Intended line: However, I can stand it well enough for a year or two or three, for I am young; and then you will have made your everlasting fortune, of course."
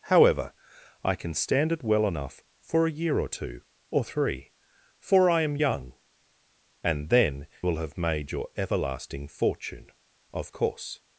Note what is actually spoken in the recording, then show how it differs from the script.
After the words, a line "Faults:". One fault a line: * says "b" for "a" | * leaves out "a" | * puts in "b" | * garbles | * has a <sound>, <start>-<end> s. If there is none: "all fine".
However, I can stand it well enough for a year or two or three, for I am young; and then will have made your everlasting fortune, of course."
Faults:
* leaves out "you"